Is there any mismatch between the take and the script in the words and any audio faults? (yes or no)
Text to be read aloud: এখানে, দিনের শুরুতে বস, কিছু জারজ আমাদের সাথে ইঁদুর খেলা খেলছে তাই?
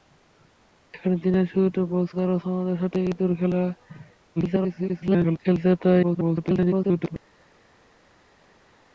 yes